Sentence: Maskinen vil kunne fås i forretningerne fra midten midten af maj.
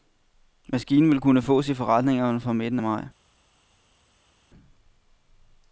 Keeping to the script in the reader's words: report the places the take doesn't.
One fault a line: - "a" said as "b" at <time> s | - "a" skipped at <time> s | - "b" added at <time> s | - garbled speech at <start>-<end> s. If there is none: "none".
- "midten" skipped at 2.8 s